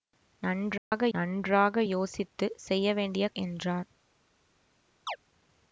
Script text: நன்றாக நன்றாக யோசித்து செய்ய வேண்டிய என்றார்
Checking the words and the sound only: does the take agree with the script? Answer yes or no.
no